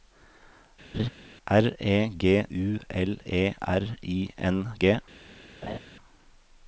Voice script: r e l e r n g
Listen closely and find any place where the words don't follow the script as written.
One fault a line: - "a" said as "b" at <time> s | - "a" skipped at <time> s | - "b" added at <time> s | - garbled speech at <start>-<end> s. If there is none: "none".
- "g u" added at 2.2 s
- "i" added at 4.0 s